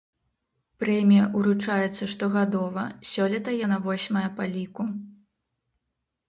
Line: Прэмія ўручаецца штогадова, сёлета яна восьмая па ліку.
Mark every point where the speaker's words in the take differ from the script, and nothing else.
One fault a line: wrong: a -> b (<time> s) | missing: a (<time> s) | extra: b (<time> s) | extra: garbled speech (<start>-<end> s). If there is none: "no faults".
no faults